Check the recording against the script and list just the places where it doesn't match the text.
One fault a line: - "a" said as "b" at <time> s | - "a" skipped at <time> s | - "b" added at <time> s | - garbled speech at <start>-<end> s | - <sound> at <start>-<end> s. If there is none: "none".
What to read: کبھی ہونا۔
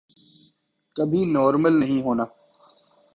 - "نارمل نہیں" added at 1.2 s